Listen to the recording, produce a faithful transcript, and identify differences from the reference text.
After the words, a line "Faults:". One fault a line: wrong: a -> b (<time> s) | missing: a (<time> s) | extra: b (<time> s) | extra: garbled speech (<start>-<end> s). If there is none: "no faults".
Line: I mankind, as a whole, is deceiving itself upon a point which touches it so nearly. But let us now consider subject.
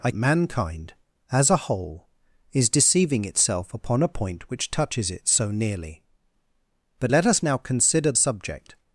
I mankind, as a whole, is deceiving itself upon a point which touches it so nearly. But let us now consider subject.
Faults:
no faults